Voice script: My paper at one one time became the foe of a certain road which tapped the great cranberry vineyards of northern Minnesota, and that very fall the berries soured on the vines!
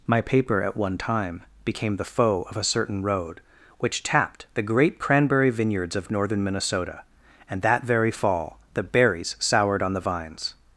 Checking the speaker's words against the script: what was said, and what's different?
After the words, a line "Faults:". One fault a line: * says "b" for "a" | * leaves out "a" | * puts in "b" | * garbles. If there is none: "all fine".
My paper at one time became the foe of a certain road which tapped the great cranberry vineyards of northern Minnesota, and that very fall the berries soured on the vines!
Faults:
* leaves out "one"